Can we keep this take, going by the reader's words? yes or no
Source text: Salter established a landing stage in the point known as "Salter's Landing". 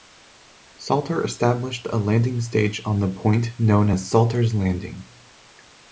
no